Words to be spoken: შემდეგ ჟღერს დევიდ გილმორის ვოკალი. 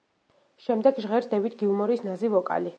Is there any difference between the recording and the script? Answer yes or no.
yes